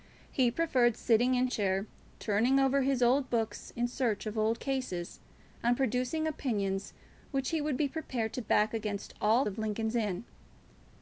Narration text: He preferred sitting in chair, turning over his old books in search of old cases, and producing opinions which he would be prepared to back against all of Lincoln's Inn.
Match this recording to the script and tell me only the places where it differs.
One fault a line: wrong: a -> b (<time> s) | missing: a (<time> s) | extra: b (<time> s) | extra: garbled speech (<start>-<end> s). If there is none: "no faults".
no faults